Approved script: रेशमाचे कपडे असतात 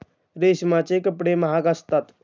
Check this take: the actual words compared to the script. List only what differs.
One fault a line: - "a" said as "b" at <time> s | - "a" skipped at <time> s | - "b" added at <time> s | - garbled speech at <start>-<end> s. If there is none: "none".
- "महाग" added at 1.4 s